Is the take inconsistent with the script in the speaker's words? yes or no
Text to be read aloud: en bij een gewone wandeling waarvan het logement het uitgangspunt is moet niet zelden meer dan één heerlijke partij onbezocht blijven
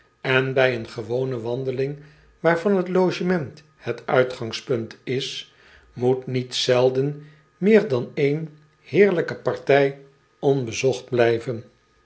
no